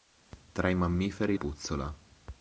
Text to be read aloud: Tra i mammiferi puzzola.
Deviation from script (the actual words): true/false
false